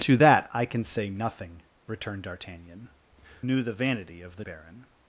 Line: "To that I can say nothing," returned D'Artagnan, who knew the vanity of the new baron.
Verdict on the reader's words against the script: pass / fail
fail